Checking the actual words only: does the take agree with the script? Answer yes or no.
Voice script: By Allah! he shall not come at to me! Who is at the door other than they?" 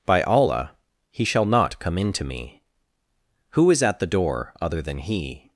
no